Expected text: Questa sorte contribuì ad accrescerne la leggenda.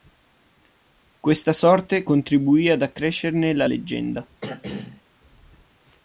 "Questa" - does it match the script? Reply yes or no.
yes